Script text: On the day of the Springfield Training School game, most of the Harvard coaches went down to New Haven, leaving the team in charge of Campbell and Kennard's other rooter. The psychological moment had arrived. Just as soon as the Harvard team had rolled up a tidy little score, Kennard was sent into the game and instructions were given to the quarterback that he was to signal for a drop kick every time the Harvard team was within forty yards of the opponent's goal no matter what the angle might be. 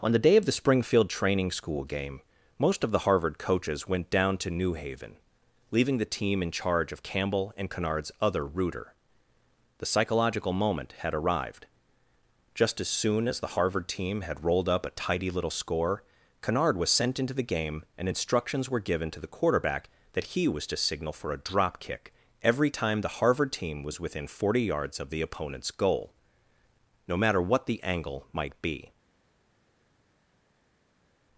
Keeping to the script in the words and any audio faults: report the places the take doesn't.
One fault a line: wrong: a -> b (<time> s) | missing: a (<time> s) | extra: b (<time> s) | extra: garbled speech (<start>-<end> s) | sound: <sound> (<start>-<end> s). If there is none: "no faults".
no faults